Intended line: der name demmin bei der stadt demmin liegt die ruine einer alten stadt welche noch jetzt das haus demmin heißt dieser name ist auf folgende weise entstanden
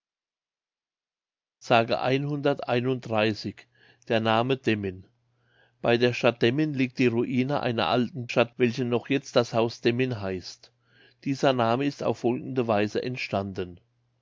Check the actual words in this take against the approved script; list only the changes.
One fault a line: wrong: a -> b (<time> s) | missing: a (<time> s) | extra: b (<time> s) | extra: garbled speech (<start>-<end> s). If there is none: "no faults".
no faults